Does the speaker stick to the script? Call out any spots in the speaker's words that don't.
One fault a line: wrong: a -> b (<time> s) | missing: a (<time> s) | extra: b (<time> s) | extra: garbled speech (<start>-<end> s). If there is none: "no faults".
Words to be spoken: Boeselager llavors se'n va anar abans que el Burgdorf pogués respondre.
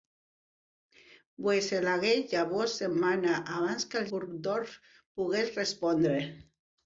no faults